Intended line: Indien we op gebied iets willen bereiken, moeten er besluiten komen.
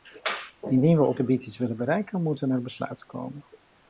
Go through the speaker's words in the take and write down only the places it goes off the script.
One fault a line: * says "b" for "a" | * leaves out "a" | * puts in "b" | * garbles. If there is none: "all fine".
all fine